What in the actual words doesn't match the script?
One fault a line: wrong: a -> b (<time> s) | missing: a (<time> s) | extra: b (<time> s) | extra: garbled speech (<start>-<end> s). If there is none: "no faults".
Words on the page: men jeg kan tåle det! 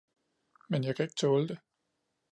extra: ikke (1.0 s)